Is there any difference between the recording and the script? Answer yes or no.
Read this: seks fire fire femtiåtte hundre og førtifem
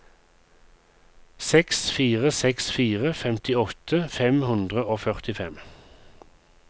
yes